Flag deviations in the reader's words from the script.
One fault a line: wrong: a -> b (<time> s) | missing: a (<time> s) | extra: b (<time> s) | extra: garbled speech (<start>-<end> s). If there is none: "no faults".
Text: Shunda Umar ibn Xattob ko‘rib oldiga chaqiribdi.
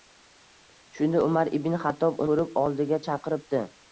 no faults